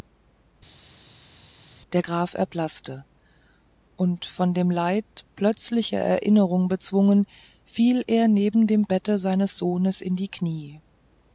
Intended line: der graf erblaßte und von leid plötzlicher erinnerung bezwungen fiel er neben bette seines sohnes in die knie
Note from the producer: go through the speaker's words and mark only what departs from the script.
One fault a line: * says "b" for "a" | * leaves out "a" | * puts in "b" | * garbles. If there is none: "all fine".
* puts in "dem"
* puts in "dem"